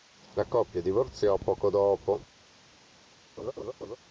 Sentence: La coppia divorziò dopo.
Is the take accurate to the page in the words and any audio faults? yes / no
no